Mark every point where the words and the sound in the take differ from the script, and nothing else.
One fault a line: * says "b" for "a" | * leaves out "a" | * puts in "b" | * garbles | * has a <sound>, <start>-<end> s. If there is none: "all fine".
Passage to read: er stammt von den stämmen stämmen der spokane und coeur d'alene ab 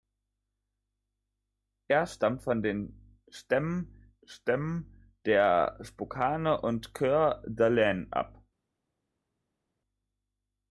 all fine